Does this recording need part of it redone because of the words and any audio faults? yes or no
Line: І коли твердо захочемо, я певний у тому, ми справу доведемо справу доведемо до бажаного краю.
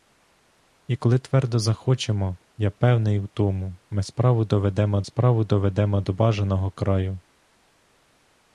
no